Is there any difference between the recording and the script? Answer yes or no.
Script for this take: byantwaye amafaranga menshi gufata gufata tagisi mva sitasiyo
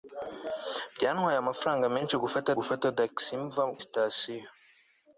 no